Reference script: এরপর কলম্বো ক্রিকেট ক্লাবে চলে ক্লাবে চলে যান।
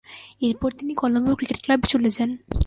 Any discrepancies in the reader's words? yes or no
yes